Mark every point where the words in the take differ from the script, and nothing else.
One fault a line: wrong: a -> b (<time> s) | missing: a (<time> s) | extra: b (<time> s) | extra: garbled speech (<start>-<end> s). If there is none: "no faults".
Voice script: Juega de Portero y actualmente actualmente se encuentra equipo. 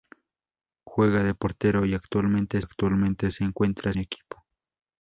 no faults